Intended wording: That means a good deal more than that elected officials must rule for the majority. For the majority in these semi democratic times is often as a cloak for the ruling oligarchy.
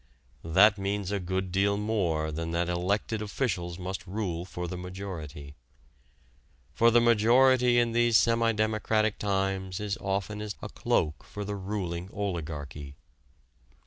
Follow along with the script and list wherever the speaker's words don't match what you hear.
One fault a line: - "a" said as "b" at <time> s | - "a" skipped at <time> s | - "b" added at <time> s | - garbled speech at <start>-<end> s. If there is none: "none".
none